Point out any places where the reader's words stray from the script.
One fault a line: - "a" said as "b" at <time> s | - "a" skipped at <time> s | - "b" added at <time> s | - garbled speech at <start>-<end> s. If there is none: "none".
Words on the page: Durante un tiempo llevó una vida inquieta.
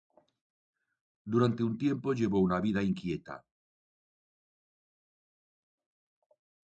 none